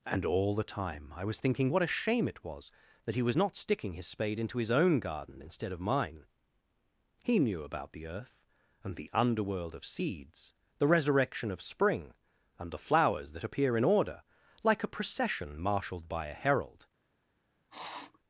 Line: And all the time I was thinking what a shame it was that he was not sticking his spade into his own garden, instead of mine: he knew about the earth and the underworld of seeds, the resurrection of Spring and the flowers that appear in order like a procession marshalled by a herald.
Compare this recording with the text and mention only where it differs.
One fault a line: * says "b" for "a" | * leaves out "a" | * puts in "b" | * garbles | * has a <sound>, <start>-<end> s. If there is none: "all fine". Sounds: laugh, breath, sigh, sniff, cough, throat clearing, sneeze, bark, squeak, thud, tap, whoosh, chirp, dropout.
* has a sniff, 17.7-18.2 s